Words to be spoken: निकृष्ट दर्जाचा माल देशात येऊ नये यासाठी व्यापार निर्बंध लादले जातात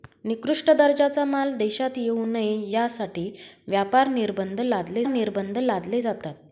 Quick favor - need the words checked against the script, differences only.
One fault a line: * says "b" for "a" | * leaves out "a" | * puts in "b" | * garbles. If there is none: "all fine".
* puts in "निर्बंध लादले"